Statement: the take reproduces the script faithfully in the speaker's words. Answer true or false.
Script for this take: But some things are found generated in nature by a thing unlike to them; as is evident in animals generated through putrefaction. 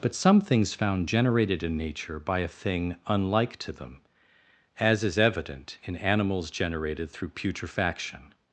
false